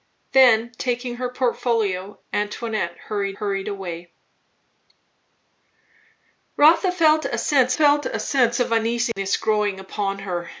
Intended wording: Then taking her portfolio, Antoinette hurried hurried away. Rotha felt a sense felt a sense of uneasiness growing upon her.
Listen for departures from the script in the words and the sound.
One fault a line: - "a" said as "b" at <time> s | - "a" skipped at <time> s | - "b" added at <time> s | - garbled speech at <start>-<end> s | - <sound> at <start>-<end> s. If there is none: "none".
- dropout at 9.1-9.2 s